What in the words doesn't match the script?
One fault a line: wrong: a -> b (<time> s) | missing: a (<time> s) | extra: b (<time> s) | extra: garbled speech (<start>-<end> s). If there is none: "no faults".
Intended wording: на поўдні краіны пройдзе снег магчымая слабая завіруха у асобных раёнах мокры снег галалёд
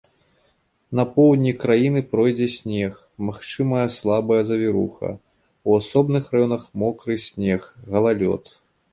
no faults